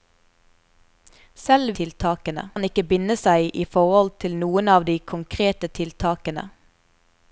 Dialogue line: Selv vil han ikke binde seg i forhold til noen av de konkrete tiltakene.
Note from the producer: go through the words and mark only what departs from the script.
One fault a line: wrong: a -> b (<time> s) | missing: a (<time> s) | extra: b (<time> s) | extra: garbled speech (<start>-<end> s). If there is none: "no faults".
wrong: vil -> tiltakene (1.8 s)